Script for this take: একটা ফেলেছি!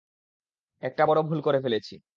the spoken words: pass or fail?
fail